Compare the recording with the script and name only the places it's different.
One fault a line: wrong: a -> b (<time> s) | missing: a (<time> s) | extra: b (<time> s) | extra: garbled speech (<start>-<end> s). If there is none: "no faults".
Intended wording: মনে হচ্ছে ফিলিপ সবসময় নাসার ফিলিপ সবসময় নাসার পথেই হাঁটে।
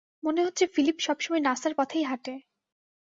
missing: ফিলিপ সবসময় নাসার (1.7 s)